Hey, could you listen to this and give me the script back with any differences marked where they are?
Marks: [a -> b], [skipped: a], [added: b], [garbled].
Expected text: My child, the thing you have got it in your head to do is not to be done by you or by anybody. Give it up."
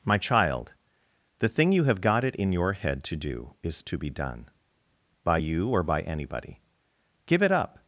My child, the thing you have got it in your head to do is [skipped: not] to be done by you or by anybody. Give it up."